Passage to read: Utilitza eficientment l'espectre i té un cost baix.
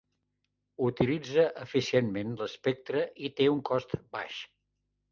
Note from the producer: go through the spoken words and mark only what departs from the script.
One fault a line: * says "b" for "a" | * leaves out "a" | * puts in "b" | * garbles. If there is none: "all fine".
all fine